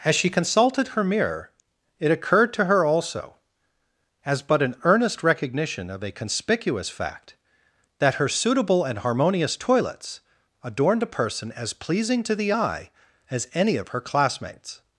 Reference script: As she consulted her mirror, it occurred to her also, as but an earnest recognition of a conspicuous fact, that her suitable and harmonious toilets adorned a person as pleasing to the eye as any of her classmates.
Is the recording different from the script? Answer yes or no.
no